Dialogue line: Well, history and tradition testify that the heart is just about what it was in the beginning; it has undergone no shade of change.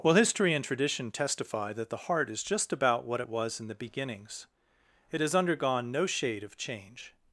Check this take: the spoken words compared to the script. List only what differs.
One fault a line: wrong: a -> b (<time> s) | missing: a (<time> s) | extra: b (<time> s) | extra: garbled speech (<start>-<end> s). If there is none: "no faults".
wrong: beginning -> beginnings (3.7 s)